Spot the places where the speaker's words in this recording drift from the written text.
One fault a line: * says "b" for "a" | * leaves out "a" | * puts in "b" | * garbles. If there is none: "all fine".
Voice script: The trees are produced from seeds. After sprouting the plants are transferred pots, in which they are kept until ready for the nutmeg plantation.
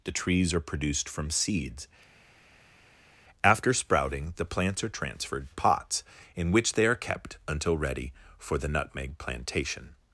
all fine